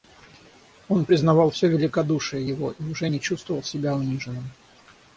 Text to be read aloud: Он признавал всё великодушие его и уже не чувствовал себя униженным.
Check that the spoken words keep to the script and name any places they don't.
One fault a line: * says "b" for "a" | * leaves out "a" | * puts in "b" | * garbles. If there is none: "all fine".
all fine